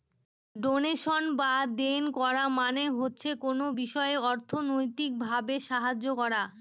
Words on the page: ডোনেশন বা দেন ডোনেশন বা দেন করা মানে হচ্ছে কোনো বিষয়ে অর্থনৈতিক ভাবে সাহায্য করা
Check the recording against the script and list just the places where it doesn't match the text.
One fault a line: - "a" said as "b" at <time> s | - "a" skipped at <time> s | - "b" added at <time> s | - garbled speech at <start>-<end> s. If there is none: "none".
- "ডোনেশন বা দেন" skipped at 2.0 s